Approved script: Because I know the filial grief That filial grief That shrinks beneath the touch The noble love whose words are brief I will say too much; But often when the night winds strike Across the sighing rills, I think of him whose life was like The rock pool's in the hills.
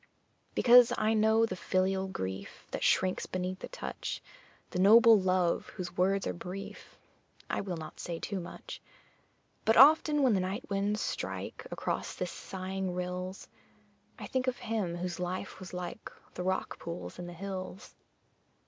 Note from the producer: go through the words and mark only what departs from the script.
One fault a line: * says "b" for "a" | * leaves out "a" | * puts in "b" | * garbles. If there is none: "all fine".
* leaves out "filial grief That"
* puts in "not"